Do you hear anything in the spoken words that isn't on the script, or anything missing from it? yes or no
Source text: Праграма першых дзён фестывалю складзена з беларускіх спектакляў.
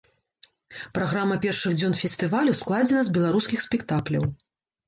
no